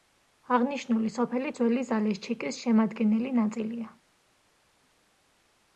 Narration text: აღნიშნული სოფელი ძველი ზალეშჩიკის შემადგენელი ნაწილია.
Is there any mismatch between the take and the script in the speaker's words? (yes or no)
no